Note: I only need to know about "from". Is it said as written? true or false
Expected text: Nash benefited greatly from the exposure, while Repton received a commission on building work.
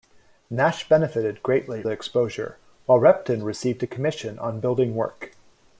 false